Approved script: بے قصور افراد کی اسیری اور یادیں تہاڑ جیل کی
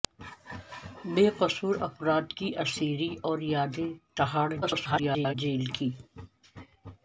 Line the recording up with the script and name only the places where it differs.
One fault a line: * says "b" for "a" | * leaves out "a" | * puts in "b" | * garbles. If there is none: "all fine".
* garbles